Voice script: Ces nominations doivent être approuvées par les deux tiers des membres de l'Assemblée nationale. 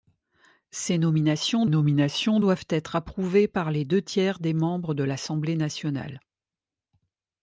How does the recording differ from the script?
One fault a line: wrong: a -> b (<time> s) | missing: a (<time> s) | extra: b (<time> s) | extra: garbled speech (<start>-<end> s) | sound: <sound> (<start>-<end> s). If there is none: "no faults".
extra: nominations (1.7 s)